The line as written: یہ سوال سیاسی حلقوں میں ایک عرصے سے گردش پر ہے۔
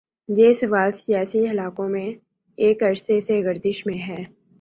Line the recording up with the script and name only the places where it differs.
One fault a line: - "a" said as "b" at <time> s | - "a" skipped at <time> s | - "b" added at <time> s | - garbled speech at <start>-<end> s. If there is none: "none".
- "پر" said as "میں" at 3.9 s